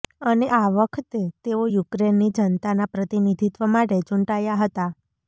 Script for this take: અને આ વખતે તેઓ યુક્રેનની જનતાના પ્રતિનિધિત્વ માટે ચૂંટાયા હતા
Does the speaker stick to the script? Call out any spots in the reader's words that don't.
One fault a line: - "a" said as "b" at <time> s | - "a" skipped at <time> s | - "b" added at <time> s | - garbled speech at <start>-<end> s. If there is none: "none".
none